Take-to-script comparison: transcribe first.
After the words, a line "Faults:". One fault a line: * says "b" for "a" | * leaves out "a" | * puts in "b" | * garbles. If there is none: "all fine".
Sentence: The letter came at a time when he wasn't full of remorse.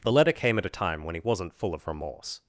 The letter came at a time when he wasn't full of remorse.
Faults:
all fine